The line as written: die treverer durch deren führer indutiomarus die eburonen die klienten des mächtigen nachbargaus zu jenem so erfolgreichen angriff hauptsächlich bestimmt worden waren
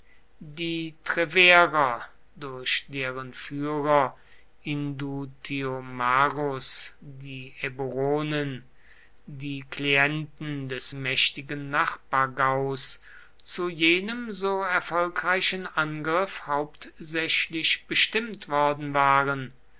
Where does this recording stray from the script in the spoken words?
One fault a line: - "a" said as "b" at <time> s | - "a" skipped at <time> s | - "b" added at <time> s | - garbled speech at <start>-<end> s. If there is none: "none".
none